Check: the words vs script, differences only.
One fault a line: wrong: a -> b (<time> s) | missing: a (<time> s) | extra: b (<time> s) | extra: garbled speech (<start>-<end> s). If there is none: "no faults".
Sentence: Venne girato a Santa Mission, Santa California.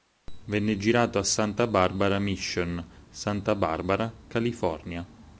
extra: Barbara (1.7 s)
extra: Barbara (3.5 s)